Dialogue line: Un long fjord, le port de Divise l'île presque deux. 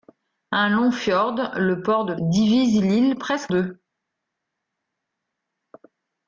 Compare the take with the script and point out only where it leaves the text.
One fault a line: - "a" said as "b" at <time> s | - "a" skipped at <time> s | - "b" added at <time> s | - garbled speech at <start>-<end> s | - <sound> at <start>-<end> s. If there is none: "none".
none